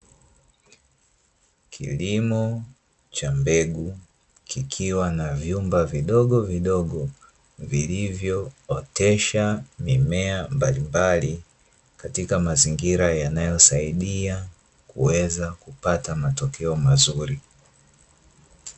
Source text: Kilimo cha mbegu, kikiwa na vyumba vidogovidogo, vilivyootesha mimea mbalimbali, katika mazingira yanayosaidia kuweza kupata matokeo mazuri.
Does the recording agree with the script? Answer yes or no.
yes